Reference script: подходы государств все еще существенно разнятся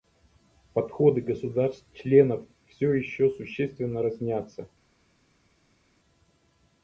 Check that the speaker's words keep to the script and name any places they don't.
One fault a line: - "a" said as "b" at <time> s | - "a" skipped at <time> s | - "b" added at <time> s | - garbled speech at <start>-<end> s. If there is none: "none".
- "членов" added at 1.9 s